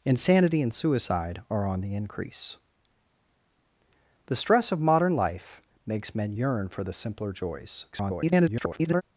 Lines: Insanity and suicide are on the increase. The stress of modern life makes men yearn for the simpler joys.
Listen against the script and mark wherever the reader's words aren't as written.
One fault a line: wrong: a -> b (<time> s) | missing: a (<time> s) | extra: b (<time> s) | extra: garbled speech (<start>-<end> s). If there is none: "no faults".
extra: garbled speech (7.9-9.0 s)